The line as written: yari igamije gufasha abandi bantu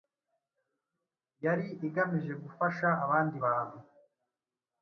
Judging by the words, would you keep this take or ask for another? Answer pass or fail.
pass